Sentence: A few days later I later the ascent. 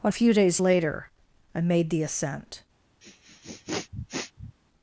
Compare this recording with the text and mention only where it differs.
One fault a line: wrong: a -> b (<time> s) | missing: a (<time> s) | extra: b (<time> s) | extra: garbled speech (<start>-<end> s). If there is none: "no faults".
wrong: later -> made (1.6 s)